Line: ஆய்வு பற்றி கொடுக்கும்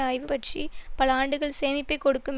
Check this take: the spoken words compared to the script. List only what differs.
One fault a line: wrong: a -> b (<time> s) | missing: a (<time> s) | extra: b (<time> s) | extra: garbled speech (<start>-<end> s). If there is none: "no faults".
extra: பல ஆண்டுகள் சேமிப்பை (0.9 s)